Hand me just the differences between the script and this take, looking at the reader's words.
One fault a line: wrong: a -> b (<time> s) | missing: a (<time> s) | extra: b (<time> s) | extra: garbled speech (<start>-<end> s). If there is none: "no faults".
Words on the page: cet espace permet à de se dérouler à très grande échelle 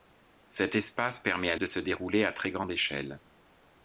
no faults